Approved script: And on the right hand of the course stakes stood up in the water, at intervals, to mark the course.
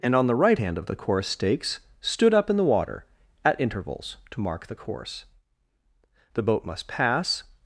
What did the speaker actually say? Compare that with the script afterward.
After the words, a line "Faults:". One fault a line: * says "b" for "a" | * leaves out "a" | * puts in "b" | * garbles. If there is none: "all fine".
And on the right hand of the course stakes stood up in the water, at intervals, to mark the course. The boat must pass
Faults:
* puts in "The boat must pass"